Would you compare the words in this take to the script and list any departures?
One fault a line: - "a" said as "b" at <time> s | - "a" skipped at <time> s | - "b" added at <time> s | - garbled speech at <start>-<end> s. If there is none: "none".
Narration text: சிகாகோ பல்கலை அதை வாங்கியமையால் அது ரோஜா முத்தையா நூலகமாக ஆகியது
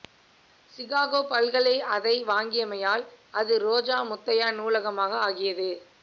none